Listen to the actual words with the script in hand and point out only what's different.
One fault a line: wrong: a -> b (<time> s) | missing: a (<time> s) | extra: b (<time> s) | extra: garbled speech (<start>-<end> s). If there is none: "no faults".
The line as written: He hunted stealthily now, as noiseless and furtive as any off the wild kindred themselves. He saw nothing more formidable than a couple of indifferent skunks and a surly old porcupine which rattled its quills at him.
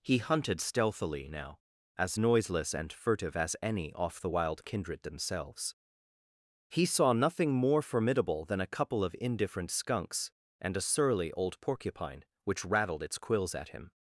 no faults